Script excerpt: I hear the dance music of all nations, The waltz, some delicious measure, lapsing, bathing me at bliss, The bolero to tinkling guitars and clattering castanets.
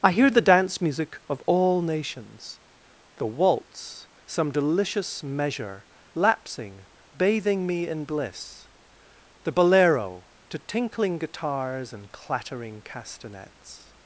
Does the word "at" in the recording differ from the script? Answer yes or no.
yes